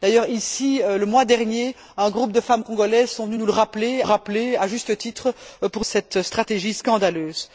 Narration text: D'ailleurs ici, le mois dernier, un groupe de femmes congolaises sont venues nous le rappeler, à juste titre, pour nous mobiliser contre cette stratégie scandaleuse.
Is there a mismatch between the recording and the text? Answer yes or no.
yes